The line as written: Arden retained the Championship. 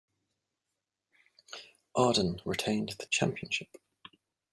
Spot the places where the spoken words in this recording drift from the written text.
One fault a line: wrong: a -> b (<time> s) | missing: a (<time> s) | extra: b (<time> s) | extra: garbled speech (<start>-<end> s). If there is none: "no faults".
no faults